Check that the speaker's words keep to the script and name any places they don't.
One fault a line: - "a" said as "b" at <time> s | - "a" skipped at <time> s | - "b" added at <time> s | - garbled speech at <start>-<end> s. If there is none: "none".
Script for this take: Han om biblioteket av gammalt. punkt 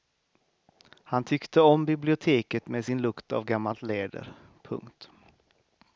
- "tyckte" added at 1.2 s
- "med sin lukt" added at 2.7 s
- "läder" added at 3.8 s